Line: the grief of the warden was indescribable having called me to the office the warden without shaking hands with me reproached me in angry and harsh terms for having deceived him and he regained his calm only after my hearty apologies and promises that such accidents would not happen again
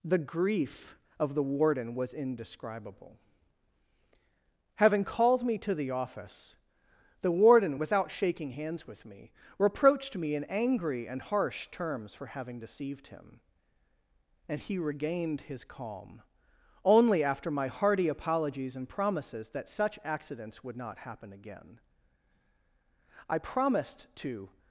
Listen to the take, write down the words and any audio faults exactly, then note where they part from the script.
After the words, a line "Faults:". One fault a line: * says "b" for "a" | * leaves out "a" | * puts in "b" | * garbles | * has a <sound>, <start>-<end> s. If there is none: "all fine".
the grief of the warden was indescribable having called me to the office the warden without shaking hands with me reproached me in angry and harsh terms for having deceived him and he regained his calm only after my hearty apologies and promises that such accidents would not happen again i promised to
Faults:
* puts in "i promised to"